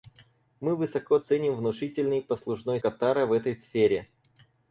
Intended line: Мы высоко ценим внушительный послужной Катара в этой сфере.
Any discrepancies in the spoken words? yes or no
no